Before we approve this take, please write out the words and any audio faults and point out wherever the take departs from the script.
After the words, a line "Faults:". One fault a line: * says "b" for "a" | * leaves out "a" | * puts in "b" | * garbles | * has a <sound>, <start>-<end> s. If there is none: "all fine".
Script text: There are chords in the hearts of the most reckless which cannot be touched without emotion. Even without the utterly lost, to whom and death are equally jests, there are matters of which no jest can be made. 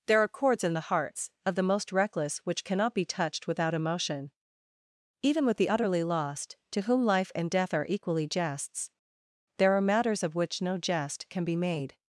There are chords in the hearts of the most reckless which cannot be touched without emotion. Even with the utterly lost, to whom life and death are equally jests, there are matters of which no jest can be made.
Faults:
* says "with" for "without"
* puts in "life"